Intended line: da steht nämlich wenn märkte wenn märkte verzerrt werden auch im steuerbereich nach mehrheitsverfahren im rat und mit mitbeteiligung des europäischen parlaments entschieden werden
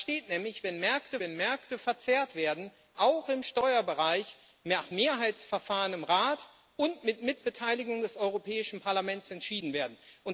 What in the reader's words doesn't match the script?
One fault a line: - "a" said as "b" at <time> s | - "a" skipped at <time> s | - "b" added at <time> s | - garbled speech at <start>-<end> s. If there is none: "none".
none